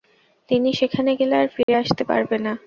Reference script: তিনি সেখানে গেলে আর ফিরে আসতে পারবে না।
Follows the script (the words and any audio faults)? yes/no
no